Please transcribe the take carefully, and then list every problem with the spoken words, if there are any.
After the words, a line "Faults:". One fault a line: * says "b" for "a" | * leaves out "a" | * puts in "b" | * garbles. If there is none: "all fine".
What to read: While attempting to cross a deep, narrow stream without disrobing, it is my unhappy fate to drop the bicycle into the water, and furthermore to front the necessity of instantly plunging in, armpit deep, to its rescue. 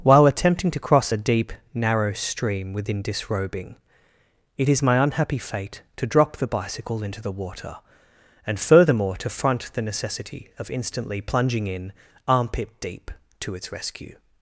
While attempting to cross a deep, narrow stream within disrobing, it is my unhappy fate to drop the bicycle into the water, and furthermore to front the necessity of instantly plunging in, armpit deep, to its rescue.
Faults:
* says "within" for "without"